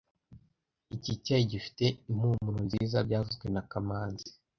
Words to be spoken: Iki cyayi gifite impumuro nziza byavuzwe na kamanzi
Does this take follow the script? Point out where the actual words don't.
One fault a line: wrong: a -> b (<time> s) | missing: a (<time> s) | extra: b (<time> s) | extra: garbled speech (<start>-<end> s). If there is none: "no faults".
no faults